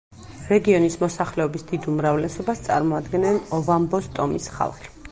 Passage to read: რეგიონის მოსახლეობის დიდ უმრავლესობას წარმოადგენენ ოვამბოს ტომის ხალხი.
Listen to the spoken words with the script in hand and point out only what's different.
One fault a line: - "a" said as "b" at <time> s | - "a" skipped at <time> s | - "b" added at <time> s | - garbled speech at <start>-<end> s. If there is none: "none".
none